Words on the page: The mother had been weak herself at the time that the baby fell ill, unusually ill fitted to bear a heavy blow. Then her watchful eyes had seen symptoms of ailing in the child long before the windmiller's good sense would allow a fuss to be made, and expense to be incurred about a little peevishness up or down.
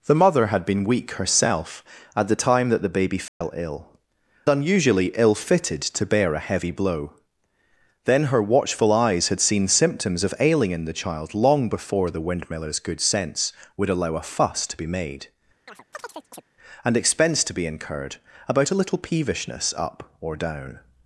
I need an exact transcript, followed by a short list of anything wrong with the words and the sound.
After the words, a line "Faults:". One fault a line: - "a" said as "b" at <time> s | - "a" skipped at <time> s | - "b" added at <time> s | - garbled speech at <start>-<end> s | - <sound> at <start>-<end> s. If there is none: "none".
The mother had been weak herself at the time that the baby fell ill, unusually ill fitted to bear a heavy blow. Then her watchful eyes had seen symptoms of ailing in the child long before the windmiller's good sense would allow a fuss to be made, and expense to be incurred about a little peevishness up or down.
Faults:
- dropout at 3.3-3.4 s
- chirp at 15.7-16.4 s